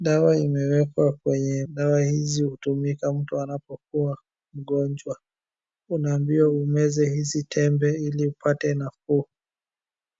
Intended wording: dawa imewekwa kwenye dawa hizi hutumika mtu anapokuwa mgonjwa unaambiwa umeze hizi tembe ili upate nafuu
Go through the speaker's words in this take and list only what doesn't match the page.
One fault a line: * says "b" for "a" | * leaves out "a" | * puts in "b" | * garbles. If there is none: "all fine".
all fine